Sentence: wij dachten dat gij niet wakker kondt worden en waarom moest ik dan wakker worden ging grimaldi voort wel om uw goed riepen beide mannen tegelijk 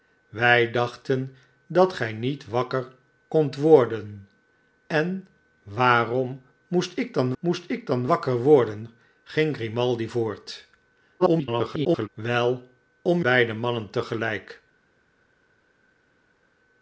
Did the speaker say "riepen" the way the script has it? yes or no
no